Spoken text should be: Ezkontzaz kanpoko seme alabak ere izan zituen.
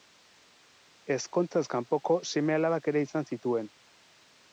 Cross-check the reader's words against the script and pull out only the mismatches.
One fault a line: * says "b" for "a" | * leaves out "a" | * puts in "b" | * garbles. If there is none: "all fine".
all fine